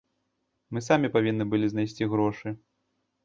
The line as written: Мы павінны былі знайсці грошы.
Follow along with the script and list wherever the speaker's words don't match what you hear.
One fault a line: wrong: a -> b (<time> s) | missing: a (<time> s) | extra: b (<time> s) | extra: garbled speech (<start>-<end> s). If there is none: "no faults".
extra: самі (0.9 s)